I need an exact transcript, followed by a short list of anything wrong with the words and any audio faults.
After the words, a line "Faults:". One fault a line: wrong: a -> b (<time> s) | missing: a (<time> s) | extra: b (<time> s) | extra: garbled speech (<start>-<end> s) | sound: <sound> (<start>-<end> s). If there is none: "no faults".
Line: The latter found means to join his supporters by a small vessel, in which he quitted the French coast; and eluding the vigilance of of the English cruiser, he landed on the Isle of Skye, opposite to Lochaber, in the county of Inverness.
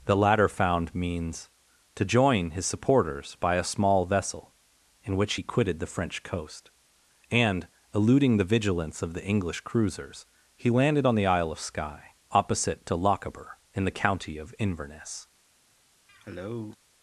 The latter found means to join his supporters by a small vessel, in which he quitted the French coast; and eluding the vigilance of the English cruisers, he landed on the Isle of Skye, opposite to Lochaber, in the county of Inverness.
Faults:
missing: of (9.1 s)
wrong: cruiser -> cruisers (9.6 s)
sound: cough (16.1-16.8 s)